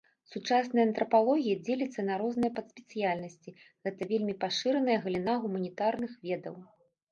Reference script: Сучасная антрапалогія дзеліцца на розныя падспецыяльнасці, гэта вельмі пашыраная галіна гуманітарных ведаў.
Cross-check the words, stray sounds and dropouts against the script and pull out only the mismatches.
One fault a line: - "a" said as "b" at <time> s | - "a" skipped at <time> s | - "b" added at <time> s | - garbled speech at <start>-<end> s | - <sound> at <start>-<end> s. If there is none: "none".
none